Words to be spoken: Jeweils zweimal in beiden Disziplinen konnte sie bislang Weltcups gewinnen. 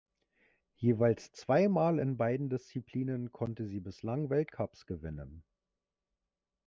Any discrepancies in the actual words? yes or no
no